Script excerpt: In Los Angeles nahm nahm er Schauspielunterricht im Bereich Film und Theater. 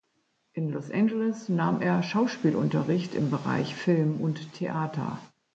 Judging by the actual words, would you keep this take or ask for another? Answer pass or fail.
fail